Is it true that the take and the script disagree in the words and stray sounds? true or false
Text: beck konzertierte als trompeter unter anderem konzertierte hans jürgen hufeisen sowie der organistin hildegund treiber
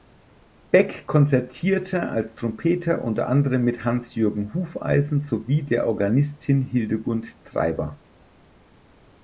true